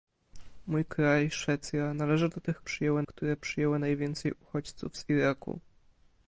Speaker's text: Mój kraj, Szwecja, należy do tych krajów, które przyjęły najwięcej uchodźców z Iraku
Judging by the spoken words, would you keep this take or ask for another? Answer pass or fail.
fail